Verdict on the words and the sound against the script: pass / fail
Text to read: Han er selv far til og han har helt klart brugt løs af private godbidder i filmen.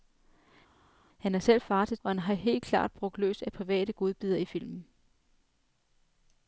pass